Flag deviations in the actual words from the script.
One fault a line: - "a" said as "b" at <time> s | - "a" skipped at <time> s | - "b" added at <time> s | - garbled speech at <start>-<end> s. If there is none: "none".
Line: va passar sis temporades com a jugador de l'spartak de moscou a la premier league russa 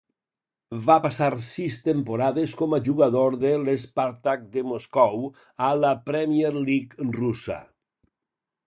none